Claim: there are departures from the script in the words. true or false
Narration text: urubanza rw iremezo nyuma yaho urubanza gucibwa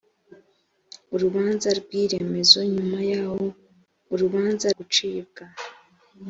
false